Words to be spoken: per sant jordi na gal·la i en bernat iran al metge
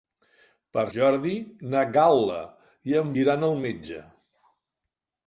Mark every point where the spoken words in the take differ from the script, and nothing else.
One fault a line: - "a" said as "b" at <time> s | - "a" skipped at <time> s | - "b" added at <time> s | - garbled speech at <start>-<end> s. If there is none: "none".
- "sant" skipped at 0.8 s
- "bernat" skipped at 3.1 s